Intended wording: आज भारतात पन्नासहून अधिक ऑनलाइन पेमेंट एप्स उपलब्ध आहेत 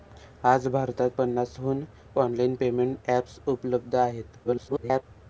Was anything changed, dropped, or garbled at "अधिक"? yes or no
yes